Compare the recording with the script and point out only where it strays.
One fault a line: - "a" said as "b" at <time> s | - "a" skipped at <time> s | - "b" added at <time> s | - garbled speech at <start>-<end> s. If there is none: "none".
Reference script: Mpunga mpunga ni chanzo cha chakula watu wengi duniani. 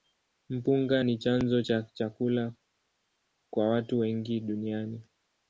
- "mpunga" skipped at 1.0 s
- "kwa" added at 3.5 s